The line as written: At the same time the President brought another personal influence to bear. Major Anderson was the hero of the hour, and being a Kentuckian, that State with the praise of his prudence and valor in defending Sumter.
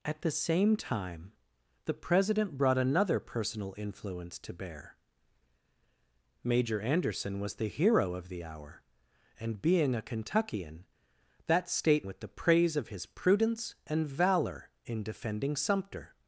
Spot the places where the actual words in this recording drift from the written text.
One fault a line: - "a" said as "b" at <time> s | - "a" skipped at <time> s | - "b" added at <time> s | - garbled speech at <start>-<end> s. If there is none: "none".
none